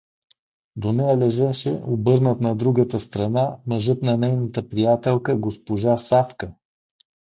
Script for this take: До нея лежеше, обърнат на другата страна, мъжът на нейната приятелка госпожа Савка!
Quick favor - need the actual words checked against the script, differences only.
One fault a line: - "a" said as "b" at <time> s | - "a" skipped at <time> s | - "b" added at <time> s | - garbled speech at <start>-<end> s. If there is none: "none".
none